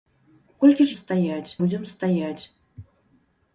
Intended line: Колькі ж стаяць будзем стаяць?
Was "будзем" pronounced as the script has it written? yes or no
yes